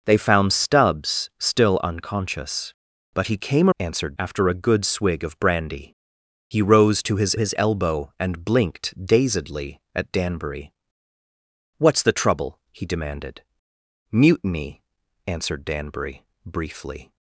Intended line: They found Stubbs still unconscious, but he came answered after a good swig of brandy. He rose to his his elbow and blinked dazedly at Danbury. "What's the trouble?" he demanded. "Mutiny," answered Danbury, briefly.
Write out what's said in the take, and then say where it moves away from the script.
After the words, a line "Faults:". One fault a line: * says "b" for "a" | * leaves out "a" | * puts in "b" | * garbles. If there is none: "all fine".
They found Stubbs still unconscious, but he came answered after a good swig of brandy. He rose to his his elbow and blinked dazedly at Danbury. "What's the trouble?" he demanded. "Mutiny," answered Danbury, briefly.
Faults:
all fine